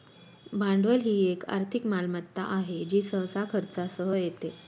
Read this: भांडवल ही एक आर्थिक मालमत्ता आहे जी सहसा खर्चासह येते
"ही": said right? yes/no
yes